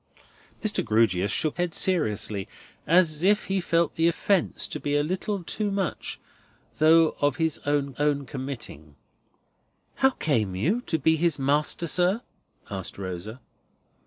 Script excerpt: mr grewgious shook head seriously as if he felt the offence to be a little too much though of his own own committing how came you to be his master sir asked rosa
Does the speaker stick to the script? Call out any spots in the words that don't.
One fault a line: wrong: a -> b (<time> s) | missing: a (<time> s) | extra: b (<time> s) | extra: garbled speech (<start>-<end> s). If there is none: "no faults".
no faults